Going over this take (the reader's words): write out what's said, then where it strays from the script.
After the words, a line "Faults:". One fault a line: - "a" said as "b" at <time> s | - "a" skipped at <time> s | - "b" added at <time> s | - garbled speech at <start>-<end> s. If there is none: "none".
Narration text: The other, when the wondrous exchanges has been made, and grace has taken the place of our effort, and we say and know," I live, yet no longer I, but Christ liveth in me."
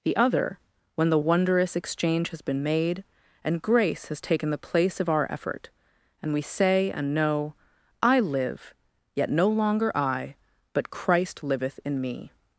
The other, when the wondrous exchange has been made, and grace has taken the place of our effort, and we say and know," I live, yet no longer I, but Christ liveth in me."
Faults:
- "exchanges" said as "exchange" at 1.7 s